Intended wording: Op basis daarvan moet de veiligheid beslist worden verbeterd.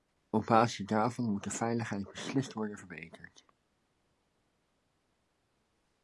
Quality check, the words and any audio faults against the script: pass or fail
pass